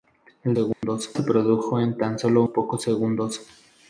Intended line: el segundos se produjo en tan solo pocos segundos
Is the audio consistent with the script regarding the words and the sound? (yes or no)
no